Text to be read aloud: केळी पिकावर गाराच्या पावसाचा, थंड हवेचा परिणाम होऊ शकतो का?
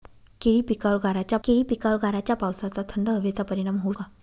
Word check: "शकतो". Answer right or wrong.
wrong